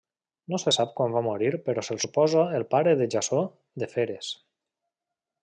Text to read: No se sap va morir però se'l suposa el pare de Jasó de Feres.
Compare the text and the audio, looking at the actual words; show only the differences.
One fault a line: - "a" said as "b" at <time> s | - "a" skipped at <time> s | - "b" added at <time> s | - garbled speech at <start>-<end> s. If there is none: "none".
- "quan" added at 1.0 s